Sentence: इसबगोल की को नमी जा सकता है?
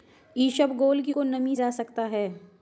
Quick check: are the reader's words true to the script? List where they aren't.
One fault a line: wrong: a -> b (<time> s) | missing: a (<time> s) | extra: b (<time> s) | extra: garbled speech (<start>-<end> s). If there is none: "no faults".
no faults